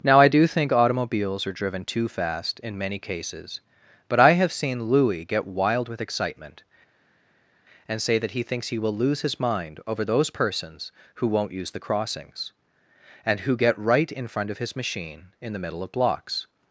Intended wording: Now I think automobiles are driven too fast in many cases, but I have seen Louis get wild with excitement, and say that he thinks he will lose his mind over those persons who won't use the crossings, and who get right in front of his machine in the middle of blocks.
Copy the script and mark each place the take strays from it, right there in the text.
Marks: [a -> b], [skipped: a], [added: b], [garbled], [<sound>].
Now I [added: do] think automobiles are driven too fast in many cases, but I have seen Louis get wild with excitement, and say that he thinks he will lose his mind over those persons who won't use the crossings, and who get right in front of his machine in the middle of blocks.